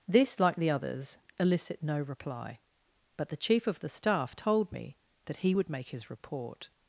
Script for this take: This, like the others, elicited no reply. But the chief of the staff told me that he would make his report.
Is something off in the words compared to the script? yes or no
yes